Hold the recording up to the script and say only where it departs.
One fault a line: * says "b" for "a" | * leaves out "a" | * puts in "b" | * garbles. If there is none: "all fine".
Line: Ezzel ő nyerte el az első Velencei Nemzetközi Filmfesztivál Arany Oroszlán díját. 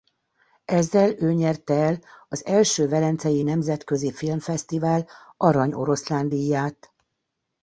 all fine